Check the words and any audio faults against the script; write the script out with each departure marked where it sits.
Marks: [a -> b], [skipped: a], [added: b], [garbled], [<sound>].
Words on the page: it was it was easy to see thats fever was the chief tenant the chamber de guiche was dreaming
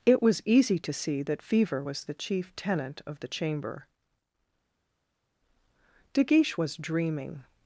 it was [skipped: it was] easy to see [thats -> that] fever was the chief tenant [added: of] the chamber de guiche was dreaming